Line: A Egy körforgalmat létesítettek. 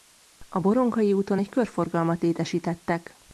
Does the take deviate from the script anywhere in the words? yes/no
yes